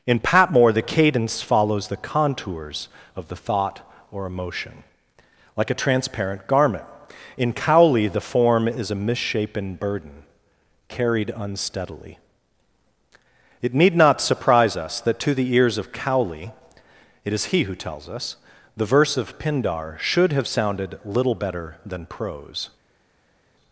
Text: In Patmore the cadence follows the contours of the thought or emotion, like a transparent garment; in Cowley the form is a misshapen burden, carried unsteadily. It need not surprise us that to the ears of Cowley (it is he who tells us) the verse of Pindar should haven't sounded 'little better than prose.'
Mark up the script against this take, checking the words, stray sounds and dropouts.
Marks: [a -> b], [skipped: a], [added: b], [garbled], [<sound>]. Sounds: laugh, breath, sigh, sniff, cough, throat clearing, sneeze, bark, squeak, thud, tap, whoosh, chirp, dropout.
In Patmore the cadence follows the contours of the thought or emotion, like a transparent garment; in Cowley the form is a misshapen burden, carried unsteadily. It need not surprise us that to the ears of Cowley (it is he who tells us) the verse of Pindar should [haven't -> have] sounded 'little better than prose.'